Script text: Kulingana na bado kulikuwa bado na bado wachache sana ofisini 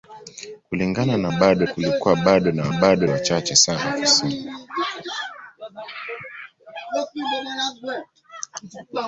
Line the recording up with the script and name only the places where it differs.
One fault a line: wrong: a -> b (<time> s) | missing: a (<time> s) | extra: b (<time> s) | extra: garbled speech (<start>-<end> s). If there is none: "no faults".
no faults